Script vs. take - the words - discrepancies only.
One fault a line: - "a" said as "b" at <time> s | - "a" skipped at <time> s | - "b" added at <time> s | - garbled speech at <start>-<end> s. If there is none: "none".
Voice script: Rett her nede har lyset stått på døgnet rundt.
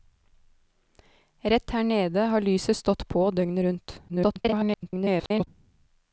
- garbled speech at 4.1-5.5 s